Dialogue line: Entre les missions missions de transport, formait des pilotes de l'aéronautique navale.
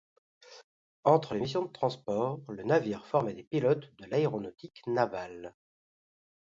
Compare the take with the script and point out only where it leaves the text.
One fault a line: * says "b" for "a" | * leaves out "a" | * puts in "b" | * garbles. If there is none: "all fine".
* leaves out "missions"
* puts in "le navire"